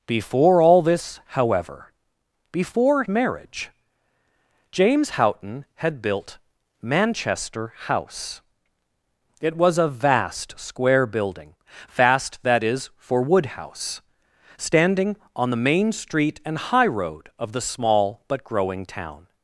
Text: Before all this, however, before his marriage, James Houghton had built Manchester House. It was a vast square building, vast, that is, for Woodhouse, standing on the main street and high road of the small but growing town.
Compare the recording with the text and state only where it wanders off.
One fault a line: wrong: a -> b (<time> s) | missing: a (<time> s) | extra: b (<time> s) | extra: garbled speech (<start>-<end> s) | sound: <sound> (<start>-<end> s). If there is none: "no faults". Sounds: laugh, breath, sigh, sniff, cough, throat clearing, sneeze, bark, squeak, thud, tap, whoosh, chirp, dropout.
missing: his (3.0 s)